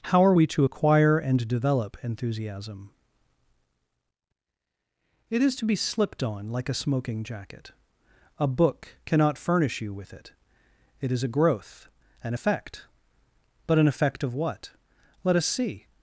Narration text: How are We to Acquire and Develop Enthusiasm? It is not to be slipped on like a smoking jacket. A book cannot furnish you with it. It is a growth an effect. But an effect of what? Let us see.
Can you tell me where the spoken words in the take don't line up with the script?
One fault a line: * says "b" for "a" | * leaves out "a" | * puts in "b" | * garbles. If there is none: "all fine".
* leaves out "not"